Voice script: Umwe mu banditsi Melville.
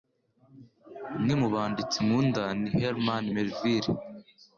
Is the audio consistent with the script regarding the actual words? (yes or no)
no